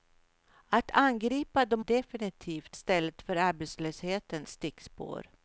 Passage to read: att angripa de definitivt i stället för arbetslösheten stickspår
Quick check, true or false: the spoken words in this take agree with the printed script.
true